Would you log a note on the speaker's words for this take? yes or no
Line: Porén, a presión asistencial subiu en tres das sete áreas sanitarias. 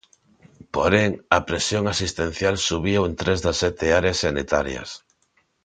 no